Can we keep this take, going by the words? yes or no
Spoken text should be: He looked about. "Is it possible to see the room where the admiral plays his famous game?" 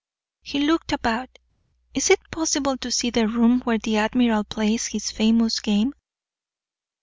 yes